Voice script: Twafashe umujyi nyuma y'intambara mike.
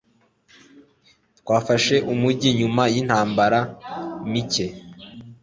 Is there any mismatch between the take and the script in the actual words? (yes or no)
no